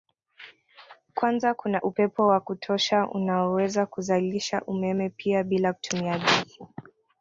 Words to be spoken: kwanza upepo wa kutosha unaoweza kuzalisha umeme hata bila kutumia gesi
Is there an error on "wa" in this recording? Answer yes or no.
no